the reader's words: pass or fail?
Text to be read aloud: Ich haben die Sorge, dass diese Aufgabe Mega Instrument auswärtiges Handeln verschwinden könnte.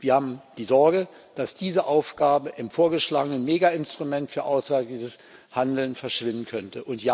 fail